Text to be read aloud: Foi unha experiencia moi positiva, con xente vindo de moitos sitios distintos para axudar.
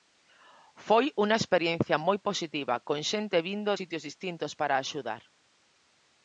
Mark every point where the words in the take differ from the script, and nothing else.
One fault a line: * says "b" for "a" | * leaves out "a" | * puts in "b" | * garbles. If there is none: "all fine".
* leaves out "de moitos"